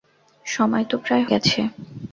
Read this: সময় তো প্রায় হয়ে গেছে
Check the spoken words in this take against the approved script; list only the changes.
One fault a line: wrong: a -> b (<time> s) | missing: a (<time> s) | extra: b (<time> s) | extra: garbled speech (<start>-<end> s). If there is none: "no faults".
missing: হয়ে (1.2 s)